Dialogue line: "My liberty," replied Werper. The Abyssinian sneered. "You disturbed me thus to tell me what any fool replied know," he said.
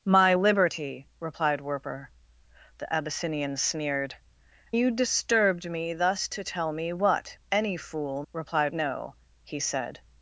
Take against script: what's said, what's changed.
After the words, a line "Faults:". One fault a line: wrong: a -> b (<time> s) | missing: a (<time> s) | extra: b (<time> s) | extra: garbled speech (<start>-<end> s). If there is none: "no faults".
"My liberty," replied Werper. The Abyssinian sneered. "You disturbed me thus to tell me what any fool replied know," he said.
Faults:
no faults